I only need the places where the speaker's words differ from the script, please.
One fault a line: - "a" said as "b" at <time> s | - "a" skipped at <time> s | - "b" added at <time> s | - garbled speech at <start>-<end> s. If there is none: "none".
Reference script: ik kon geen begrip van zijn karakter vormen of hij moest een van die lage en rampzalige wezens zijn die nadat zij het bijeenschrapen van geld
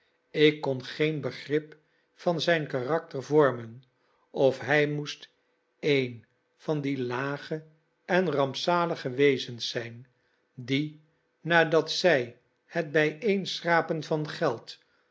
none